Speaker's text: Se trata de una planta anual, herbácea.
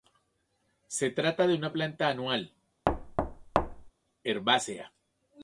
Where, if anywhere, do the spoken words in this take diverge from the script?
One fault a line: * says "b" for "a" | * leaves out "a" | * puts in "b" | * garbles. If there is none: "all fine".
all fine